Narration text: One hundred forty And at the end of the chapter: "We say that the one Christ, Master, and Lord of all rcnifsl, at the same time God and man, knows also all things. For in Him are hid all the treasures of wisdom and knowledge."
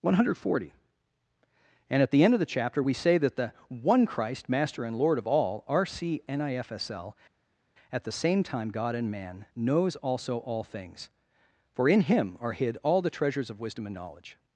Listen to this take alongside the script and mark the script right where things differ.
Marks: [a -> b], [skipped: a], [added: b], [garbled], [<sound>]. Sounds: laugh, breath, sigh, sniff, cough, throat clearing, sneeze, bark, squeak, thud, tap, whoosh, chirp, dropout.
One hundred forty And at the end of the chapter: "We say that the one Christ, Master, and Lord of all rcnifsl, at the same time God and man, knows also all things. For in Him are hid all the treasures of wisdom and knowledge."